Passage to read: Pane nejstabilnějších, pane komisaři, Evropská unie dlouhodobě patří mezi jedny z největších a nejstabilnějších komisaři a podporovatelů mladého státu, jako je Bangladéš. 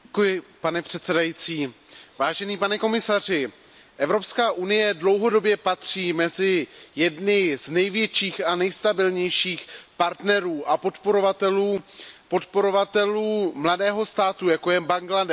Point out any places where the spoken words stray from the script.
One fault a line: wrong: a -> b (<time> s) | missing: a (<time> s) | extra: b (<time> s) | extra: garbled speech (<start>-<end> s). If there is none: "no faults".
wrong: nejstabilnějších -> předsedající (0.8 s)
wrong: komisaři -> partnerů (10.0 s)